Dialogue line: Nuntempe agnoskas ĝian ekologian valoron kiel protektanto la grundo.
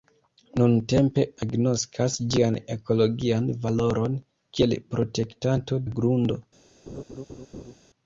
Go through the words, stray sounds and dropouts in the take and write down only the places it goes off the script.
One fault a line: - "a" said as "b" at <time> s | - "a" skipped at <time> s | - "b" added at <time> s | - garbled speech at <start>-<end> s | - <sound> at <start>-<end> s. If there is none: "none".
- laugh at 6.9-7.7 s